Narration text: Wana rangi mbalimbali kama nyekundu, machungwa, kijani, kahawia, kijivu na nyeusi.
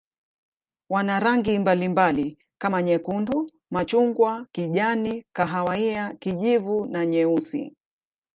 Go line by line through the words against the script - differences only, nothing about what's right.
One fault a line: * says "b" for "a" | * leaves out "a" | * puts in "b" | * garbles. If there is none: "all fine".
all fine